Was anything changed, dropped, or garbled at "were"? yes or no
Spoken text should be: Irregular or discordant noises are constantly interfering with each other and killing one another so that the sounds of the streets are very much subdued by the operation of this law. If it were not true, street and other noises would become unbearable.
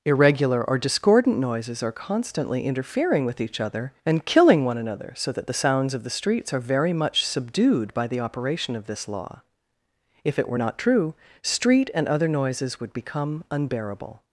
no